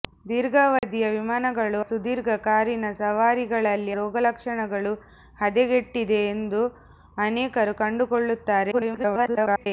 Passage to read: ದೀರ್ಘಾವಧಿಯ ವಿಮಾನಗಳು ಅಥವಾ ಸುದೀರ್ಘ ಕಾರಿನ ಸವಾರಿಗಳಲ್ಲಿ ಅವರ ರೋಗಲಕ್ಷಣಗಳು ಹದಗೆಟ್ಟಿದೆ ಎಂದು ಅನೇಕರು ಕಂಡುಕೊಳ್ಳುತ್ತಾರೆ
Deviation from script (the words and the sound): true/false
true